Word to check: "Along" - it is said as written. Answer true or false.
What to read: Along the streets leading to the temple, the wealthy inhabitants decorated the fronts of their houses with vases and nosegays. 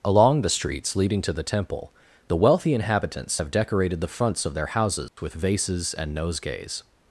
true